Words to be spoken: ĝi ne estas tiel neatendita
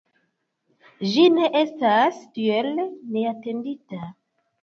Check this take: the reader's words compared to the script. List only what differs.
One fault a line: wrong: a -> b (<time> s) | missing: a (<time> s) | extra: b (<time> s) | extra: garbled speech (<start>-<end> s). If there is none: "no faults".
no faults